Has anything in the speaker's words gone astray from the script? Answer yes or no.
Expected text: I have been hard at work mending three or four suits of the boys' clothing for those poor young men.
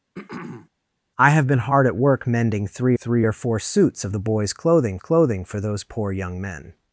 yes